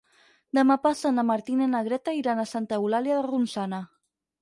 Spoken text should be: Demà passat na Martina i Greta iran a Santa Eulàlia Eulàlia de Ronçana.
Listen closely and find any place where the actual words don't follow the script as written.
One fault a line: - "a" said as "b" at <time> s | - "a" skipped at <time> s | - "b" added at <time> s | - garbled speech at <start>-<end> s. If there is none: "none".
- "na" added at 1.8 s
- "Eulàlia" skipped at 3.2 s